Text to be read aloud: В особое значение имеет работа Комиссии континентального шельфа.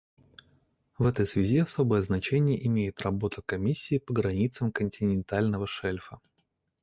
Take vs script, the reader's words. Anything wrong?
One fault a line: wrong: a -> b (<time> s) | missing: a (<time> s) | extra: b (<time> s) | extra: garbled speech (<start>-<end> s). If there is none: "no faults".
extra: этой связи (1.0 s)
extra: по границам (4.0 s)